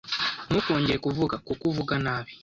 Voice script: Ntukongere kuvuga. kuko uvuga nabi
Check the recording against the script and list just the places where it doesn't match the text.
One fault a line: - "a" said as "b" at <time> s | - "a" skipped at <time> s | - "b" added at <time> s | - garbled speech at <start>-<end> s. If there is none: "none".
none